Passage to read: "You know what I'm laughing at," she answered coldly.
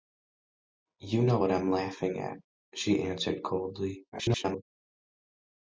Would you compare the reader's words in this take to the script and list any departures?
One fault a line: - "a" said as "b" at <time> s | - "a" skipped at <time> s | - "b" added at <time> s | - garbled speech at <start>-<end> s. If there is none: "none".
- garbled speech at 4.1-4.6 s